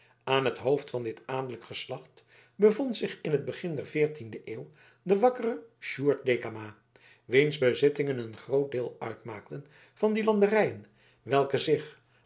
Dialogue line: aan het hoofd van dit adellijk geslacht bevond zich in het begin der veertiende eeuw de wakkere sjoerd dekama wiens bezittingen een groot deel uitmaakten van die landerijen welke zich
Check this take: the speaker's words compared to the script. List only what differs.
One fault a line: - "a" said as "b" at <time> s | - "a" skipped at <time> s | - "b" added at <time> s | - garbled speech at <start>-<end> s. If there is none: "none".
none